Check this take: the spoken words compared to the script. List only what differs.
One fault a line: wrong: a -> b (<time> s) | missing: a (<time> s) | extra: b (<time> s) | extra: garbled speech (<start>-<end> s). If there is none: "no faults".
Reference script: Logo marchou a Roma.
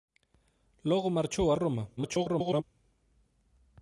extra: garbled speech (2.0-2.6 s)